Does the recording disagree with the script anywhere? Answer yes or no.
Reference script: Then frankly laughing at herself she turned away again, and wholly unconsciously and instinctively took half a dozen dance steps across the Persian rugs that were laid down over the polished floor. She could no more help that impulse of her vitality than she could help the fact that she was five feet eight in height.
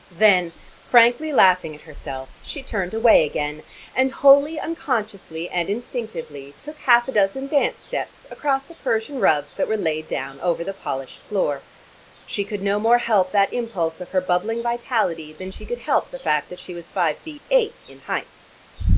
yes